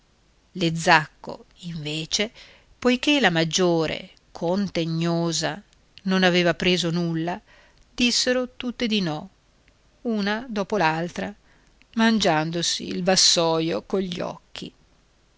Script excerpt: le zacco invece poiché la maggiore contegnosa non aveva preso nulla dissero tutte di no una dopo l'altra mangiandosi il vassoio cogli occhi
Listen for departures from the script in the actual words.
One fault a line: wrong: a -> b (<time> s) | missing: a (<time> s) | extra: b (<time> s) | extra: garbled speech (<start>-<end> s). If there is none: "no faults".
no faults